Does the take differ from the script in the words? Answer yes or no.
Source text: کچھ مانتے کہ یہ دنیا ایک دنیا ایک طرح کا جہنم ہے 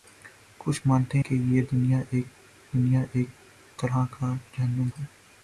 no